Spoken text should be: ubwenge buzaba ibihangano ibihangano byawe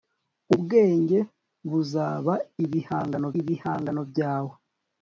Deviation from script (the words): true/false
false